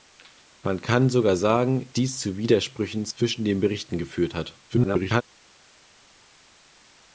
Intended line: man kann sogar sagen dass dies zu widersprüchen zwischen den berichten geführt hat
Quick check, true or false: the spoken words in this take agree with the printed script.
false